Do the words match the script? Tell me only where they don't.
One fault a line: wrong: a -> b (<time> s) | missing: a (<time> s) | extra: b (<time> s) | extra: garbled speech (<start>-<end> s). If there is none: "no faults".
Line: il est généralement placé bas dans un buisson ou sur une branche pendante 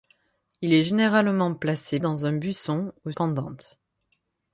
missing: bas (2.0 s)
missing: sur une branche (3.1 s)